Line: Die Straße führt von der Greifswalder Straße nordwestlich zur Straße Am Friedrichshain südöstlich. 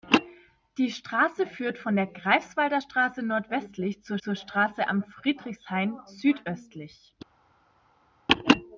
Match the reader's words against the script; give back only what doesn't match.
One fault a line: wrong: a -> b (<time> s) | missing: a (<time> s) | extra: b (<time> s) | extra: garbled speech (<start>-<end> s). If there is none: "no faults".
extra: zur (4.2 s)